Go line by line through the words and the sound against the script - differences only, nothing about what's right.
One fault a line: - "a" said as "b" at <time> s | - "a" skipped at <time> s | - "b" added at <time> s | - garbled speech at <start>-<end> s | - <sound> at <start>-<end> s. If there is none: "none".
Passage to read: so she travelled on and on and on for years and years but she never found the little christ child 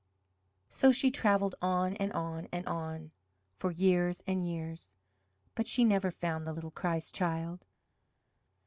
none